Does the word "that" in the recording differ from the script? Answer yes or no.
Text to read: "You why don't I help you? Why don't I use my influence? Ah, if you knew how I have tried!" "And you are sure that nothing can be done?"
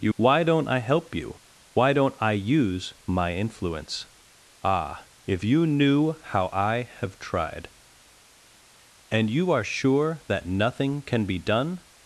no